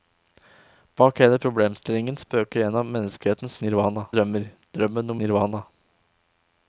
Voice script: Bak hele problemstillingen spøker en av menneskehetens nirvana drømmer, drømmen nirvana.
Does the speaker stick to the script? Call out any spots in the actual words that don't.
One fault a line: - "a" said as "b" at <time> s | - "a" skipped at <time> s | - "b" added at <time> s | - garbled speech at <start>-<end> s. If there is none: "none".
none